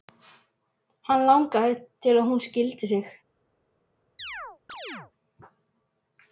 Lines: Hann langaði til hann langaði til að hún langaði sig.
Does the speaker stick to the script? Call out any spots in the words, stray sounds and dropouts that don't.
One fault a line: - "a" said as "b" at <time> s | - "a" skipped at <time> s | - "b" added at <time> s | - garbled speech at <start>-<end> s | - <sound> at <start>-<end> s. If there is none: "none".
- "hann langaði til" skipped at 2.2 s
- "langaði" said as "skildi" at 2.5 s
- chirp at 4.2-5.1 s